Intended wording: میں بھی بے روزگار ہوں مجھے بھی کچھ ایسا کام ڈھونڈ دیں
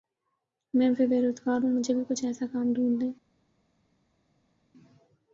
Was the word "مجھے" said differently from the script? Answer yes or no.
no